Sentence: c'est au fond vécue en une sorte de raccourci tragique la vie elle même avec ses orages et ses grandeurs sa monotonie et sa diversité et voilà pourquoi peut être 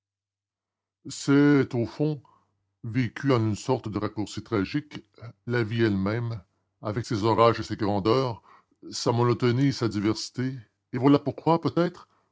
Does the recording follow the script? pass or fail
pass